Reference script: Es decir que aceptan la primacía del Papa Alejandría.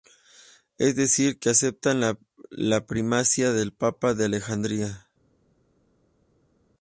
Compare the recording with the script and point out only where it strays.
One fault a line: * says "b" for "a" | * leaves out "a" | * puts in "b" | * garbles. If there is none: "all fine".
* puts in "de"